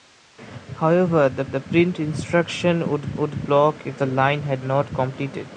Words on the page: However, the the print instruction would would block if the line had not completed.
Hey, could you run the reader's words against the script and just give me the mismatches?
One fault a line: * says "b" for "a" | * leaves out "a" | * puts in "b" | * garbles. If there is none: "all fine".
all fine